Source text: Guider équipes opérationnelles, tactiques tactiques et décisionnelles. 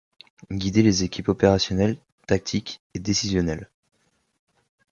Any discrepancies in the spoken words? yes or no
yes